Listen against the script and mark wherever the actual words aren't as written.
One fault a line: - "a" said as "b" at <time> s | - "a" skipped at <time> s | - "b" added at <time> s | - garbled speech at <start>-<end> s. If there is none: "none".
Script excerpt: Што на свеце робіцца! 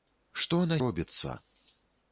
- "свеце" skipped at 0.8 s